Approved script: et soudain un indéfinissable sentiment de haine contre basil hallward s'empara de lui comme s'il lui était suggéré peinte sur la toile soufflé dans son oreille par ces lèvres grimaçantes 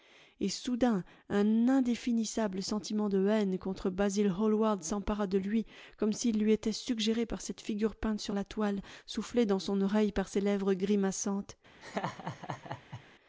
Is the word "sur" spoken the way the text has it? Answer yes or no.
yes